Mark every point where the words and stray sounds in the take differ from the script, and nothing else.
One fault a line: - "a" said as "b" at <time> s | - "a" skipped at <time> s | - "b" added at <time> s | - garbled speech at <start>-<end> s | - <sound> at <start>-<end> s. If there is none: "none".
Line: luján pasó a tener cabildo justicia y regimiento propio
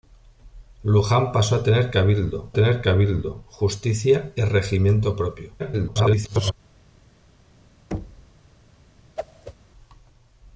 - "tener cabildo" added at 2.5 s
- garbled speech at 5.6-6.5 s
- thud at 7.9-8.3 s
- whoosh at 9.2-9.5 s